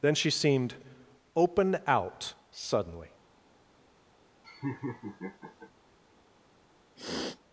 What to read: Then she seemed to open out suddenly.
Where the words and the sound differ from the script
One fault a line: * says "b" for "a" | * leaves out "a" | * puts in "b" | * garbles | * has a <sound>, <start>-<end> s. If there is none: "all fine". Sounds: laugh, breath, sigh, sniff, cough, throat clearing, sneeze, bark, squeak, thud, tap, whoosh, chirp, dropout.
* leaves out "to"
* has a laugh, 4.4-5.7 s
* has a sniff, 7.0-7.4 s